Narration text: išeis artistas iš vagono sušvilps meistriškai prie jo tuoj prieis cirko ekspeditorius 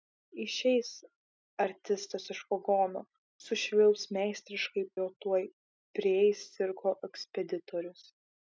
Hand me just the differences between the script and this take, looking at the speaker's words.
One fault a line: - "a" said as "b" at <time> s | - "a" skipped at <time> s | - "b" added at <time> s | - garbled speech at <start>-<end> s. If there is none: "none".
- "prie" skipped at 4.9 s